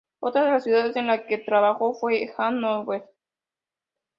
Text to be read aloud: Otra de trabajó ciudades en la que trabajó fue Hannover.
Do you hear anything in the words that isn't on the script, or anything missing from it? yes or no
yes